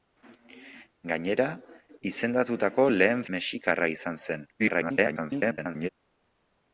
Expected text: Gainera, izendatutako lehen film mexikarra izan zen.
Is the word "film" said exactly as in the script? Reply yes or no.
no